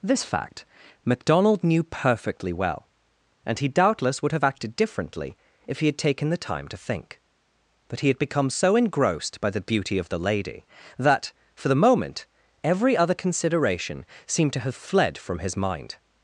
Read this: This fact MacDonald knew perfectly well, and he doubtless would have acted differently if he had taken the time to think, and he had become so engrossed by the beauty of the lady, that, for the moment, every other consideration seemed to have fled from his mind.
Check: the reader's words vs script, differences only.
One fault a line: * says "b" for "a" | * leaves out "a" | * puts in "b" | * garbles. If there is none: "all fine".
* says "but" for "and"